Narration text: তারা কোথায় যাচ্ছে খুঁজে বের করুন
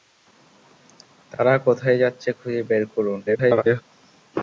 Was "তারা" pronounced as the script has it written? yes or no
yes